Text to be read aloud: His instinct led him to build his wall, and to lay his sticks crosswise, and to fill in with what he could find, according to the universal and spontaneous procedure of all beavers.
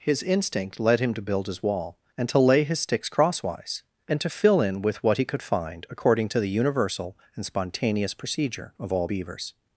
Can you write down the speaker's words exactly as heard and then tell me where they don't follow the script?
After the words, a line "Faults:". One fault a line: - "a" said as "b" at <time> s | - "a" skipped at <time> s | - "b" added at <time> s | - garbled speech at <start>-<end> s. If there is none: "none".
His instinct led him to build his wall, and to lay his sticks crosswise, and to fill in with what he could find, according to the universal and spontaneous procedure of all beavers.
Faults:
none